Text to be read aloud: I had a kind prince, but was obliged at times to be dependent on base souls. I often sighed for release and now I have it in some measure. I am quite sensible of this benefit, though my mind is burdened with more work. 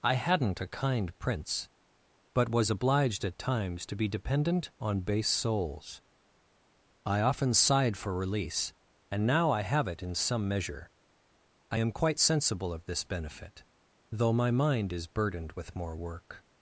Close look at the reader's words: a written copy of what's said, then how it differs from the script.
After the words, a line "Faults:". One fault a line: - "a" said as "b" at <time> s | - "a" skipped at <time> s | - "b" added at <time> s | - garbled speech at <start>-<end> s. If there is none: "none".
I hadn't a kind prince, but was obliged at times to be dependent on base souls. I often sighed for release and now I have it in some measure. I am quite sensible of this benefit, though my mind is burdened with more work.
Faults:
- "had" said as "hadn't" at 0.1 s